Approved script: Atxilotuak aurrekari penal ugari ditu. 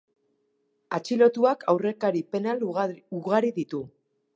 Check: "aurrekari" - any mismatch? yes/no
no